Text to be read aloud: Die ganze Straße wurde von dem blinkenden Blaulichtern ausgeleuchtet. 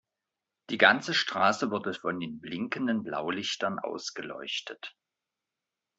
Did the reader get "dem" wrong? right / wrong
wrong